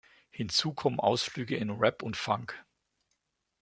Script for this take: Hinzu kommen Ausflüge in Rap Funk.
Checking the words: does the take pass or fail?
fail